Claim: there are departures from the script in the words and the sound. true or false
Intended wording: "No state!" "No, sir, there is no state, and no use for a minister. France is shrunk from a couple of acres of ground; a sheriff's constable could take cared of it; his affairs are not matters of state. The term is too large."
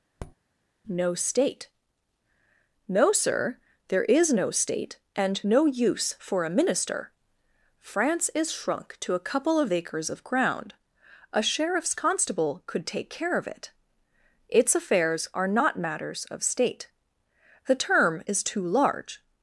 true